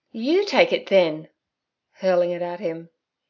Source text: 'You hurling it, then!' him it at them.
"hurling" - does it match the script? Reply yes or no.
no